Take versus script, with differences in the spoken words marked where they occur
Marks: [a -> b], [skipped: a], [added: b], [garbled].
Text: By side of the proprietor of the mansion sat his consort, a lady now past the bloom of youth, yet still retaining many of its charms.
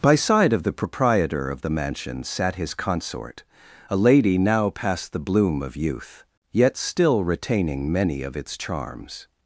By side of the proprietor of the mansion sat his consort, a lady now past the bloom of youth, yet still retaining many of its charms.